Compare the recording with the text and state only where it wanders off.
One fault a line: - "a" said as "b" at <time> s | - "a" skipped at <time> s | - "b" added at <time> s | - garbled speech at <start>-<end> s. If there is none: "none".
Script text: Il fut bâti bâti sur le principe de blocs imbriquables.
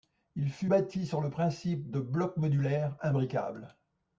- "bâti" skipped at 1.0 s
- "modulaires" added at 2.4 s